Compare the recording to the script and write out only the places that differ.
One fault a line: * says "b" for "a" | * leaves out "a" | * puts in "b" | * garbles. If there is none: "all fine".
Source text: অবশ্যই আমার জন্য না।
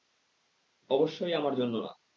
all fine